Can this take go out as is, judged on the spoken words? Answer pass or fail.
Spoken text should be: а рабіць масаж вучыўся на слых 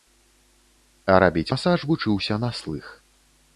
pass